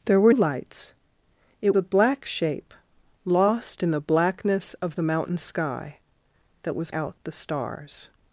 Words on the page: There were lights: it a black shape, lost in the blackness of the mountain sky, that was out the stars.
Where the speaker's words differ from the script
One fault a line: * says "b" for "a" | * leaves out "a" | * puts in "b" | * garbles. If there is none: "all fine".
all fine